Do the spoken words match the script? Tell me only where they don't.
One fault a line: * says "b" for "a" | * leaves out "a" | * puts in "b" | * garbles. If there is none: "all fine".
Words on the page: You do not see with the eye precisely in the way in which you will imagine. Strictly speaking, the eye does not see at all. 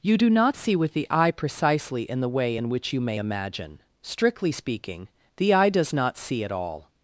* says "may" for "will"